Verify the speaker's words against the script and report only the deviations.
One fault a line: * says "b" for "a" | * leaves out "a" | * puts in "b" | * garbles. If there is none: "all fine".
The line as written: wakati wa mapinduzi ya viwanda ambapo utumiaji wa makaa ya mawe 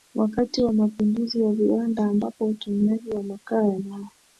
all fine